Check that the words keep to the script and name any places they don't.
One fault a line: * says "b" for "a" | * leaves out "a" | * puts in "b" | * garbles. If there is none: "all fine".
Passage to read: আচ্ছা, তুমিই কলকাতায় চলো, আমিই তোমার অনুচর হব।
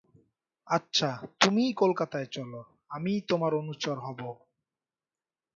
all fine